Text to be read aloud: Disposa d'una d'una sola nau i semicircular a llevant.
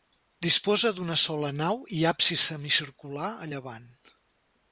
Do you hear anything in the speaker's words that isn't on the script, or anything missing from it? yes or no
yes